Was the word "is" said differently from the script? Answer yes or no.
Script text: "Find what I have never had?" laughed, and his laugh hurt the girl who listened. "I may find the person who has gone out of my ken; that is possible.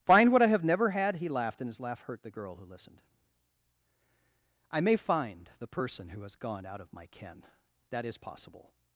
no